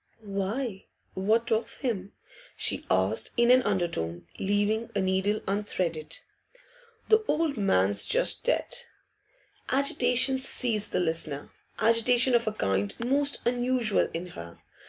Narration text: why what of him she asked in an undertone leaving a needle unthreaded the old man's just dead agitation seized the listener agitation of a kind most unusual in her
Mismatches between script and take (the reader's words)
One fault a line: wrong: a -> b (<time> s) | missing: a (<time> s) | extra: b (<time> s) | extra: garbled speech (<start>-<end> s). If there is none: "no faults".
no faults